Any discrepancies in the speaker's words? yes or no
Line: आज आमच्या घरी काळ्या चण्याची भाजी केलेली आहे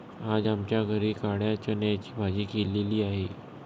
no